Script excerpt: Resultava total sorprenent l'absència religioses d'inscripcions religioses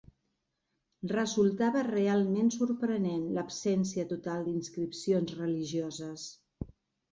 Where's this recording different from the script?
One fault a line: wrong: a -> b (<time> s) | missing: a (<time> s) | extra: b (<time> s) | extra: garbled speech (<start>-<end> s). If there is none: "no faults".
wrong: total -> realment (1.9 s)
wrong: religioses -> total (4.1 s)